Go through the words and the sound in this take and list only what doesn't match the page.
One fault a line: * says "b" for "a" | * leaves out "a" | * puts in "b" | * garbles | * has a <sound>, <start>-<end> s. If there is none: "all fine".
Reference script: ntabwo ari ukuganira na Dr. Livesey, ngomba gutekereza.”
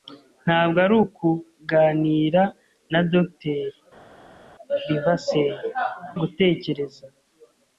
* leaves out "ngomba"